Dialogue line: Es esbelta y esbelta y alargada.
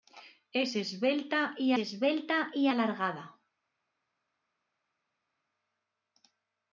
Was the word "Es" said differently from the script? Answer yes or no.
no